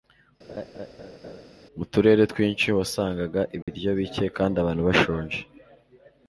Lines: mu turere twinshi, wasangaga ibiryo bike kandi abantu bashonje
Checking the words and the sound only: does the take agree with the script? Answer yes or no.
no